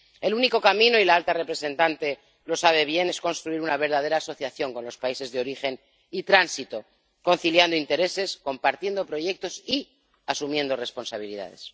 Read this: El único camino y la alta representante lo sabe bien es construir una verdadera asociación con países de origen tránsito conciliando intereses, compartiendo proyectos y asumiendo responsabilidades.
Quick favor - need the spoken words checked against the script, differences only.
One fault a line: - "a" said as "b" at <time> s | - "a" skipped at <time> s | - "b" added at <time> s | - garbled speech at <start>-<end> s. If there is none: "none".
- "los" added at 4.8 s
- "y" added at 6.1 s